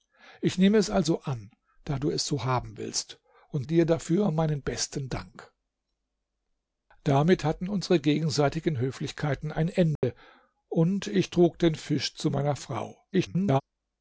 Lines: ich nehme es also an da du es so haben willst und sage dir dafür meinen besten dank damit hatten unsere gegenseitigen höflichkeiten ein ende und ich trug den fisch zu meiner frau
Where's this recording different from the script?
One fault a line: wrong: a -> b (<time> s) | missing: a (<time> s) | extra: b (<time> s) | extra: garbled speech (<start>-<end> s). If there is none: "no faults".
missing: sage (3.7 s)
extra: garbled speech (13.1-13.6 s)